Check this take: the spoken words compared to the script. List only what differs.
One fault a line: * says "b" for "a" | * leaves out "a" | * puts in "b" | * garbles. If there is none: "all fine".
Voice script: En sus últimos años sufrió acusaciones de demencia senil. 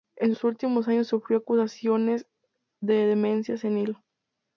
all fine